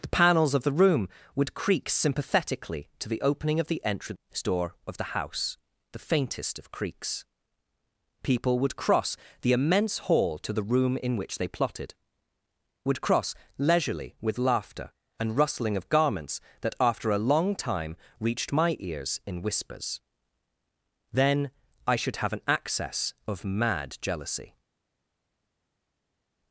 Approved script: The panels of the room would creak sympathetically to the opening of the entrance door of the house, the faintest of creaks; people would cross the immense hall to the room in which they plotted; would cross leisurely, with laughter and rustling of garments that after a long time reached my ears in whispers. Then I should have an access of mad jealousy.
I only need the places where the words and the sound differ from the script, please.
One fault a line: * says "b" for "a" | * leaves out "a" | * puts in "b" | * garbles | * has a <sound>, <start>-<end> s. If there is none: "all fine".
all fine